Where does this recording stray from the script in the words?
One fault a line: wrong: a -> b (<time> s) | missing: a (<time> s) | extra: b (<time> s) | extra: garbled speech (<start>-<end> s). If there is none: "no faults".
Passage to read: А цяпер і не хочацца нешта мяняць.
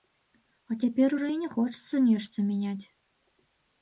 extra: ужо (1.2 s)